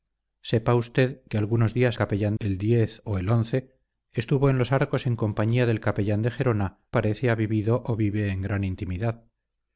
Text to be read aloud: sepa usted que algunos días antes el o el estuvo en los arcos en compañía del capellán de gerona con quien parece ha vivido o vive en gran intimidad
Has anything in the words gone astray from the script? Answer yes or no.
yes